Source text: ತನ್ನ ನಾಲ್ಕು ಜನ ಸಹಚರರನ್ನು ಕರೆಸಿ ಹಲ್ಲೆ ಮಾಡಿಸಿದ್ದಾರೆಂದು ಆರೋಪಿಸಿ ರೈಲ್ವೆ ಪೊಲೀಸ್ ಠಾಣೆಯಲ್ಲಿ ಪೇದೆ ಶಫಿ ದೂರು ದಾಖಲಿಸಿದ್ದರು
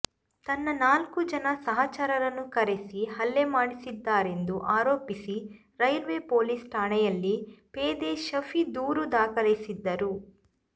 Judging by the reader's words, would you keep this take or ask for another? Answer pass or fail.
pass